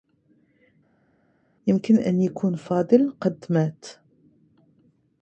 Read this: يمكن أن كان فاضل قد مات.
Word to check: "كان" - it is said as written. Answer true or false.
false